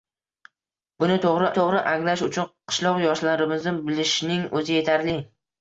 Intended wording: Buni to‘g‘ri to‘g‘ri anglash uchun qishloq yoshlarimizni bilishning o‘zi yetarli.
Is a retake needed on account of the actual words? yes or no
no